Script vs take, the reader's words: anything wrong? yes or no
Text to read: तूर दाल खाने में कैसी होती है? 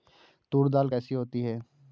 yes